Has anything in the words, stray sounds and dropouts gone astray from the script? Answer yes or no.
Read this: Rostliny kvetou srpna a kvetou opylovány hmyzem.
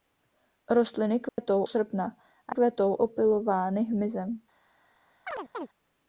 yes